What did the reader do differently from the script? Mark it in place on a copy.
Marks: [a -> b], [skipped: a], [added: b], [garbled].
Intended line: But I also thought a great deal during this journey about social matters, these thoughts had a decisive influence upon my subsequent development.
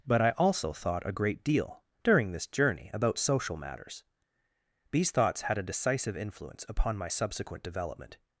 But I also thought a great deal during this journey about social matters, these thoughts had a decisive influence upon my subsequent development.